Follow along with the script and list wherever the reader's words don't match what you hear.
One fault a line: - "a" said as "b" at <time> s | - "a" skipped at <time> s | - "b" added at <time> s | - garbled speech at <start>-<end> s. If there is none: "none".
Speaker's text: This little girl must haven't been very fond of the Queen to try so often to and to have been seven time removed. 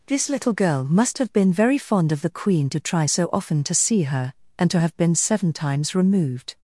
- "haven't" said as "have" at 1.2 s
- "see her" added at 3.7 s
- "time" said as "times" at 5.5 s